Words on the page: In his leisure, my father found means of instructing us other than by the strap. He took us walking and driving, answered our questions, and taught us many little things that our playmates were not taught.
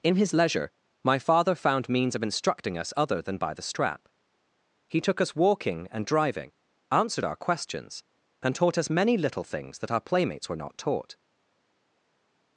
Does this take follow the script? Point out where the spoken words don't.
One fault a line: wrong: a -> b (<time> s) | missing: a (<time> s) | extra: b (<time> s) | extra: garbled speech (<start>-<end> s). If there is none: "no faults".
no faults